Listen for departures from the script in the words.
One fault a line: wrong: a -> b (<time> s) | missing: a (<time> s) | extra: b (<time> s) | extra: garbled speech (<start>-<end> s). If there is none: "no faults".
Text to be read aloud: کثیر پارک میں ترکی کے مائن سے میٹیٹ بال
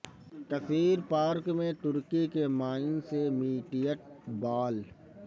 no faults